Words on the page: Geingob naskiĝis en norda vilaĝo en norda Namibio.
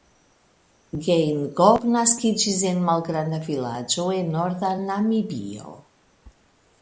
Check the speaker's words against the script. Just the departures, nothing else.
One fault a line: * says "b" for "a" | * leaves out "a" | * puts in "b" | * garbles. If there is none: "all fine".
* says "malgranda" for "norda"